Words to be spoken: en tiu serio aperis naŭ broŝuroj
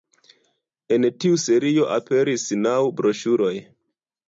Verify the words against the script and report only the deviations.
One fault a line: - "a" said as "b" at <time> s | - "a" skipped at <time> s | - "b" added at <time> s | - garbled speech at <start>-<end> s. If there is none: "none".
none